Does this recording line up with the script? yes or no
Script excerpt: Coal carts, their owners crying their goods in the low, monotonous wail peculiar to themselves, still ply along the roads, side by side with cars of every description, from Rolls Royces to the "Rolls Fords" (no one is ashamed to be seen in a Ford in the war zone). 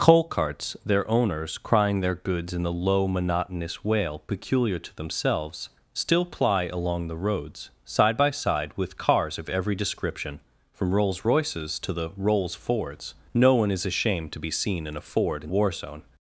no